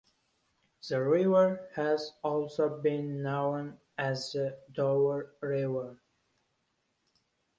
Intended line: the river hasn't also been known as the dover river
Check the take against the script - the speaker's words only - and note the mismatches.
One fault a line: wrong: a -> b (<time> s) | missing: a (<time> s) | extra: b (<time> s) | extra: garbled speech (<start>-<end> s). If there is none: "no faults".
wrong: hasn't -> has (1.8 s)